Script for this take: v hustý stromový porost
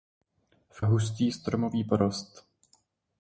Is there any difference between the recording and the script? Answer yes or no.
no